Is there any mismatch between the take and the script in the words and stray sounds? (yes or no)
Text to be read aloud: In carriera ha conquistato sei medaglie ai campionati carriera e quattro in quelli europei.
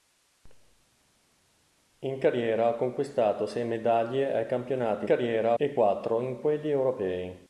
no